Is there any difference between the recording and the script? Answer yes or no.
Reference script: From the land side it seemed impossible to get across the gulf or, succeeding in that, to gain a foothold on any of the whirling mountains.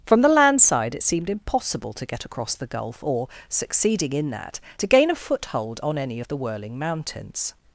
no